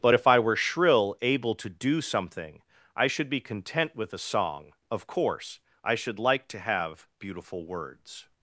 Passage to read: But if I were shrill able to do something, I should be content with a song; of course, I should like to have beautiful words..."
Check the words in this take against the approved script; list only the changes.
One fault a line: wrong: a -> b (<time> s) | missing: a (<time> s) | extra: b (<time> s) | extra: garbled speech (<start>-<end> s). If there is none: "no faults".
no faults